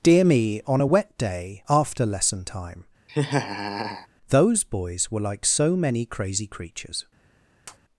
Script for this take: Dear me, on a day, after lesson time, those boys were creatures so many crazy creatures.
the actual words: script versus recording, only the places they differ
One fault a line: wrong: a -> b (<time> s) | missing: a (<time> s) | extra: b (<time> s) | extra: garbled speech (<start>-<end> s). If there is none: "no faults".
extra: wet (0.8 s)
wrong: creatures -> like (5.2 s)